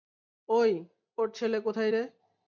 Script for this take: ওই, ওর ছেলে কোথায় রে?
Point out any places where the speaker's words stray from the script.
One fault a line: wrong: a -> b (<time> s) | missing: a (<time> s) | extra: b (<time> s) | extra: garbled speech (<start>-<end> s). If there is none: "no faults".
no faults